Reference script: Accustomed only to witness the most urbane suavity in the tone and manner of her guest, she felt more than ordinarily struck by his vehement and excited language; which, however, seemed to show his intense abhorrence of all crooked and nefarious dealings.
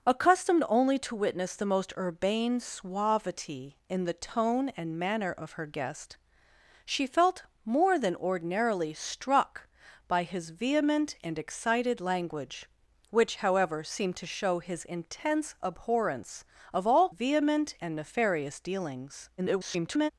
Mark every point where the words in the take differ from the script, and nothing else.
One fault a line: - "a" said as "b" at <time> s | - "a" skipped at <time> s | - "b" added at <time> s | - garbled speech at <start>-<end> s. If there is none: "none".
- "crooked" said as "vehement" at 17.1 s
- garbled speech at 19.4-20.1 s